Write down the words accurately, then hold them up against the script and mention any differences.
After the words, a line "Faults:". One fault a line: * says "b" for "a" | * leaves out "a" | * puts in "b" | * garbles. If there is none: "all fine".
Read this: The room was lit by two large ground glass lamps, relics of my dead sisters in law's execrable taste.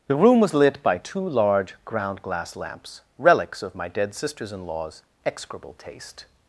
The room was lit by two large ground glass lamps, relics of my dead sisters in law's execrable taste.
Faults:
all fine